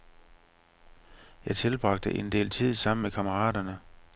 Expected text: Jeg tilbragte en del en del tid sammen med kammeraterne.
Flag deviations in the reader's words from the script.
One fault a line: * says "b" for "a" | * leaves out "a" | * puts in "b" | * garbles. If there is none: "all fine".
* leaves out "en del"